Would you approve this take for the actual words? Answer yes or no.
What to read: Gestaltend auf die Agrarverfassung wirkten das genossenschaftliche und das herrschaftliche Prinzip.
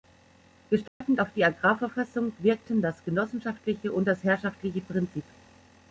yes